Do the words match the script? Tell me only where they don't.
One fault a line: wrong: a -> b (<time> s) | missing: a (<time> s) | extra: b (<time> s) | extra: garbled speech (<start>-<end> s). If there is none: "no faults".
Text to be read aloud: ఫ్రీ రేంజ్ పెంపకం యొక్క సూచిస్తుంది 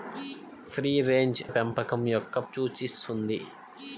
no faults